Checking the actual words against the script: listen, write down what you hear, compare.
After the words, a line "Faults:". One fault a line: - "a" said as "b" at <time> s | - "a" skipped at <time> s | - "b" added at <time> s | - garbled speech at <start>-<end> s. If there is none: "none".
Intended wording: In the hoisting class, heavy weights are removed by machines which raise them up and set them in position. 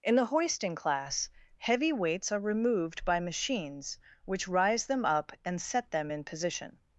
In the hoisting class, heavy weights are removed by machines which rise them up and set them in position.
Faults:
- "raise" said as "rise" at 4.5 s